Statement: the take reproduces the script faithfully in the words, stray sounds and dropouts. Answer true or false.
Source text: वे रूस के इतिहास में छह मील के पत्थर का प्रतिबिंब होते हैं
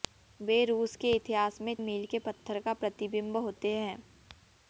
false